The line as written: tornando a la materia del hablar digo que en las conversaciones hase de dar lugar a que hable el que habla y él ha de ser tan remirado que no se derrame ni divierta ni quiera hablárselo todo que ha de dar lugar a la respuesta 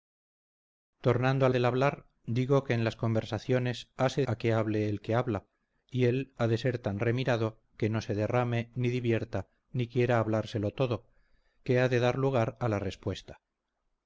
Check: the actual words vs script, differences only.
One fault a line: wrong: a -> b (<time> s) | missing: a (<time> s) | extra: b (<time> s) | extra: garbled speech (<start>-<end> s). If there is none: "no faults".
missing: la materia (1.5 s)
missing: de dar lugar (4.3 s)